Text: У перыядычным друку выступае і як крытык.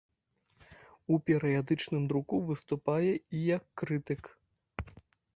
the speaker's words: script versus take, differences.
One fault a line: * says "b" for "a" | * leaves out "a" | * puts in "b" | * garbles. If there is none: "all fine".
all fine